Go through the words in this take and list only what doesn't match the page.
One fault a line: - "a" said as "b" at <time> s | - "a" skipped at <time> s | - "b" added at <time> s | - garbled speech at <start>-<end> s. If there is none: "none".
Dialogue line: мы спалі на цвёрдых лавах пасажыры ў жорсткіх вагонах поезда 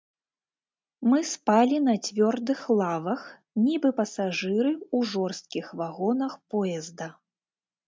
- "нібы" added at 3.7 s